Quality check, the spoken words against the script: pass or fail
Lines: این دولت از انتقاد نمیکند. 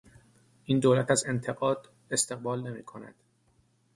fail